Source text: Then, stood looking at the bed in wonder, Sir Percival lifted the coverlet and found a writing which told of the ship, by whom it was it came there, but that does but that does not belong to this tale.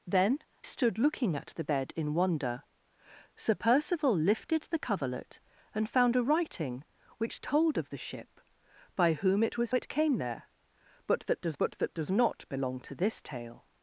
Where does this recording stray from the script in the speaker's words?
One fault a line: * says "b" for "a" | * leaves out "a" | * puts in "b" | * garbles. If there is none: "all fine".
all fine